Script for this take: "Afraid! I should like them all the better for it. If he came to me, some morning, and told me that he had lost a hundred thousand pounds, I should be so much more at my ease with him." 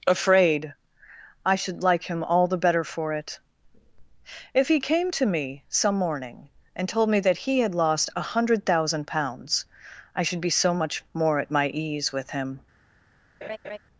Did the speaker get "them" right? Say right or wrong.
wrong